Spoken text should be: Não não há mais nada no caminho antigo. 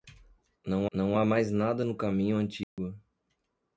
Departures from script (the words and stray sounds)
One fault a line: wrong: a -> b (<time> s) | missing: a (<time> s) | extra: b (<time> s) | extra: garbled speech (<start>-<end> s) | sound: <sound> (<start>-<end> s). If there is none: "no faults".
sound: dropout (2.6-2.8 s)